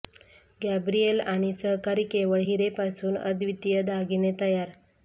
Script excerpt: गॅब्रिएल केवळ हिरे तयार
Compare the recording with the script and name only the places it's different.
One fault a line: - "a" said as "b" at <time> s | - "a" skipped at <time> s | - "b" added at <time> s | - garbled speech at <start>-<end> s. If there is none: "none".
- "आणि सहकारी" added at 1.2 s
- "पासून अद्वितीय दागिने" added at 2.8 s